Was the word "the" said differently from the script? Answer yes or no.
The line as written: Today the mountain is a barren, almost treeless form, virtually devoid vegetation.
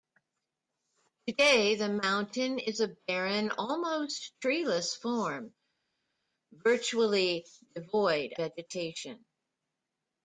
no